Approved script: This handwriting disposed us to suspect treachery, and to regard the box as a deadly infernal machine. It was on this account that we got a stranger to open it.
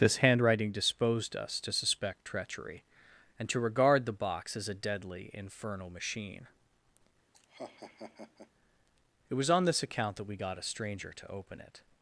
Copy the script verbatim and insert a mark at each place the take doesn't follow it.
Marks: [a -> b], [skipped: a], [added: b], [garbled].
This handwriting disposed us to suspect treachery, and to regard the box as a deadly infernal machine. It was on this account that we got a stranger to open it.